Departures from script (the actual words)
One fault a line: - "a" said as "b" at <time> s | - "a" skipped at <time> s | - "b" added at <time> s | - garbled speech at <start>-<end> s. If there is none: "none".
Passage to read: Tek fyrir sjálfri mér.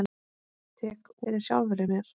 none